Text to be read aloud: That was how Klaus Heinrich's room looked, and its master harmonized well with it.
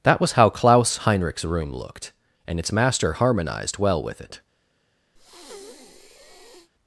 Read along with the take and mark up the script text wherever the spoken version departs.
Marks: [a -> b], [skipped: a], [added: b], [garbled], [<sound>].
That was how Klaus Heinrich's room looked, and its master harmonized well with it. [breath]